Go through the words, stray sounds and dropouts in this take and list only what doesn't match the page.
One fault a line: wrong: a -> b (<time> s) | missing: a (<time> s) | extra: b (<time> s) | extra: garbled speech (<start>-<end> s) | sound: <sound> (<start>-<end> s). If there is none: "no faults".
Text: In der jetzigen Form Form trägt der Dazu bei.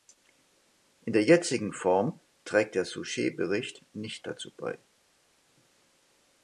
missing: Form (2.2 s)
extra: Souchet Bericht nicht (2.9 s)